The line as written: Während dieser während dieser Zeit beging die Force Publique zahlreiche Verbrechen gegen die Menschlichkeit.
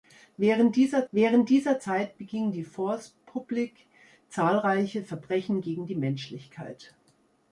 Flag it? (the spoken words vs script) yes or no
no